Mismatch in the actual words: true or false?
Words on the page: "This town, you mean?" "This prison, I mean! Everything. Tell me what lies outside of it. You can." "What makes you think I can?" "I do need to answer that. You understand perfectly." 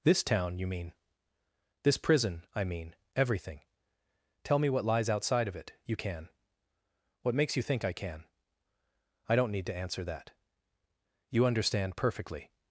true